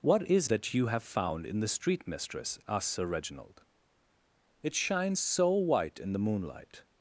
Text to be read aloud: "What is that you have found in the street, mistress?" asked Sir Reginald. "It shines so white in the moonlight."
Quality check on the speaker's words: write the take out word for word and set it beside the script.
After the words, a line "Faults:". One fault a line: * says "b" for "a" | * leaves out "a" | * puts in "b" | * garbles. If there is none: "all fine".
"What is that you have found in the street, mistress?" asked Sir Reginald. "It shines so white in the moonlight."
Faults:
all fine